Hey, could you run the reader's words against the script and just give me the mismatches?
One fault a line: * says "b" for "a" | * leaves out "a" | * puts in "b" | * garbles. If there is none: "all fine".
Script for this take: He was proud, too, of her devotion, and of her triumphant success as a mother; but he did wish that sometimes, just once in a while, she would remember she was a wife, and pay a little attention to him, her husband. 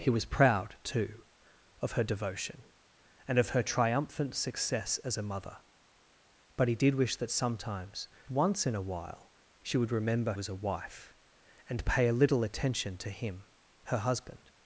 * leaves out "just"
* leaves out "she"